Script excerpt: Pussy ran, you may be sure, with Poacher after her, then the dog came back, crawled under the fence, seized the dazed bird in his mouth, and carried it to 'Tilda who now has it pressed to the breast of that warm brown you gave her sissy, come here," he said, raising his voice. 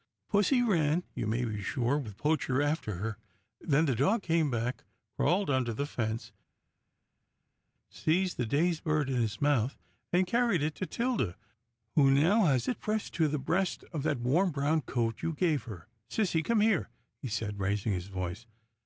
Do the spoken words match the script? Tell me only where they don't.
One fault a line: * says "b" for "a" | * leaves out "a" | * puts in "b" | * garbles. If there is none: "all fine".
* puts in "coat"